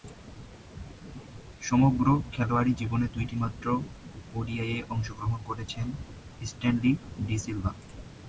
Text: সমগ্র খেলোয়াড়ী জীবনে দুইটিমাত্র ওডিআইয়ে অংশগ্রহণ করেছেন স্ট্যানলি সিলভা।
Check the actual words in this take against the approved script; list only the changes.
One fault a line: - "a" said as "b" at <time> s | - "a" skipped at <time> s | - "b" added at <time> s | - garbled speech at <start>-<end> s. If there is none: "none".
- "ডি" added at 7.3 s